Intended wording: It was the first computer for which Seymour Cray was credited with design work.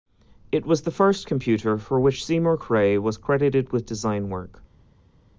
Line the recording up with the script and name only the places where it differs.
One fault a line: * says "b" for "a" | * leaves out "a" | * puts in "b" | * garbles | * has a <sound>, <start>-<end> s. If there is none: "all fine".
all fine